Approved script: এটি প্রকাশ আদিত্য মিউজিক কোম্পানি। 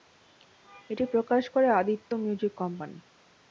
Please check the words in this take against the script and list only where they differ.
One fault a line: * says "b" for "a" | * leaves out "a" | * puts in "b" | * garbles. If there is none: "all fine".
* puts in "করে"